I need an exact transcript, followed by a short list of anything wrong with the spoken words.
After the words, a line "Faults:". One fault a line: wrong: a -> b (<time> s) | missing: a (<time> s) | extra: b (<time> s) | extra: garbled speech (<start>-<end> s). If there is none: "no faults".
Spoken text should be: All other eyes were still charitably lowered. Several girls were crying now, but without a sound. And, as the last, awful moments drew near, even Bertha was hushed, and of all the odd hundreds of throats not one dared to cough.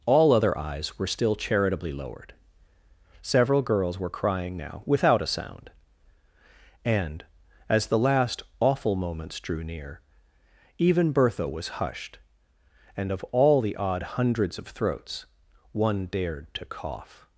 All other eyes were still charitably lowered. Several girls were crying now, without a sound. And, as the last, awful moments drew near, even Bertha was hushed, and of all the odd hundreds of throats one dared to cough.
Faults:
missing: but (4.8 s)
missing: not (15.3 s)